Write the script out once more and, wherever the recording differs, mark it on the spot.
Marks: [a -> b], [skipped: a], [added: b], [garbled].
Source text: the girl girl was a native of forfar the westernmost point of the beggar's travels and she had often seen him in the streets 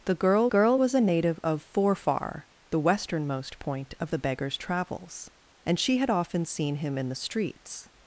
the girl girl was a native of forfar the westernmost point of the beggar's travels and she had often seen him in the streets